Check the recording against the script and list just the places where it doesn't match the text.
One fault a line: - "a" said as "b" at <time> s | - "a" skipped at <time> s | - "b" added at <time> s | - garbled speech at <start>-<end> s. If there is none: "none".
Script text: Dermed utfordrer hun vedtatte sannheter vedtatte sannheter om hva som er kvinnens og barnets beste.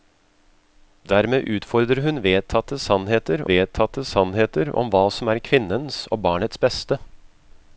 none